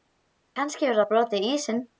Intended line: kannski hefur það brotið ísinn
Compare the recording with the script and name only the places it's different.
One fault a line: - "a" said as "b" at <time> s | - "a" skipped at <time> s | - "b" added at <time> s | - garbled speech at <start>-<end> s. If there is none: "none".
none